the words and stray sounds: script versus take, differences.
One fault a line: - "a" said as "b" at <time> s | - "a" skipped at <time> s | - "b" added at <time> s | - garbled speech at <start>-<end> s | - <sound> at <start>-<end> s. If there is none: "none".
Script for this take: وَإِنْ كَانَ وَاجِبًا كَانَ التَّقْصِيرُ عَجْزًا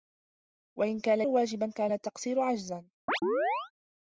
- chirp at 3.1-3.7 s